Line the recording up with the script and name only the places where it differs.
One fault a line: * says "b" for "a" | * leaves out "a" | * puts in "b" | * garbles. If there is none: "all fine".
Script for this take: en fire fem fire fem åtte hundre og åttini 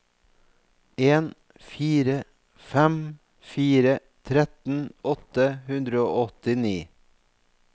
* says "tretten" for "fem"